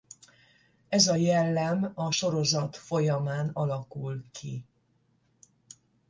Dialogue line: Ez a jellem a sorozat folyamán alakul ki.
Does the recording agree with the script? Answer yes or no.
yes